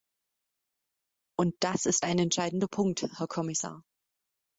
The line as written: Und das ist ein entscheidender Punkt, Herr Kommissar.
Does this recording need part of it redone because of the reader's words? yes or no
no